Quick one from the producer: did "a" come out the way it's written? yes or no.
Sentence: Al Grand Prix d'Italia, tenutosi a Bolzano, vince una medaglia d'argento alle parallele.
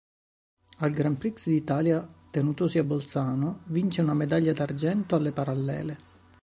yes